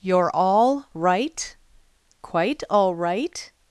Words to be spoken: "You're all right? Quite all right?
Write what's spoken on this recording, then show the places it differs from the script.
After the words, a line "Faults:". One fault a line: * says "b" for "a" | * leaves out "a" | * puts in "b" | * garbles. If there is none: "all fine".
"You're all right? Quite all right?
Faults:
all fine